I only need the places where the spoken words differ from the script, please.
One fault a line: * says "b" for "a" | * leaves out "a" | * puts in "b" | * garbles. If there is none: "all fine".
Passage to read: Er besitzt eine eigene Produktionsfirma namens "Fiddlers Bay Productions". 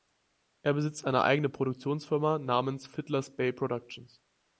all fine